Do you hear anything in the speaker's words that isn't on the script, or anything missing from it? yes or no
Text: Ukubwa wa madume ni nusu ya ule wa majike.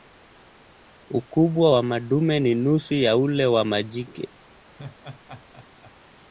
no